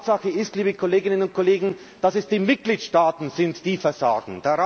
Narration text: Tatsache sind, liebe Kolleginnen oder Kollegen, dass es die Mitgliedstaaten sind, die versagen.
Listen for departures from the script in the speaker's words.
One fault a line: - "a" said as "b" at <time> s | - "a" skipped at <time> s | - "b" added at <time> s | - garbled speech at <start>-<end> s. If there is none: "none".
- "sind" said as "ist" at 0.3 s
- "oder" said as "und" at 1.2 s